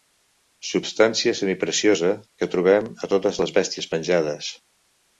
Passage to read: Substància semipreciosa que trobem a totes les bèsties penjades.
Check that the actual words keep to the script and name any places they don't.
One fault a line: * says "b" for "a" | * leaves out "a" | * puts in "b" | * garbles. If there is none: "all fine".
all fine